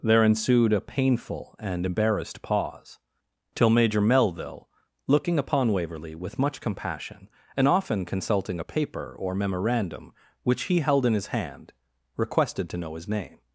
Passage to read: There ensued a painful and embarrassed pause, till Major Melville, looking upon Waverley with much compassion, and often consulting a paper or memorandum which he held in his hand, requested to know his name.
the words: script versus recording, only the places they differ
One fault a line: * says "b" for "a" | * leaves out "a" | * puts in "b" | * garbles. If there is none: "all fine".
all fine